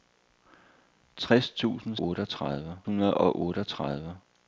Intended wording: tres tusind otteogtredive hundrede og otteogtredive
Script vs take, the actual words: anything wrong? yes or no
no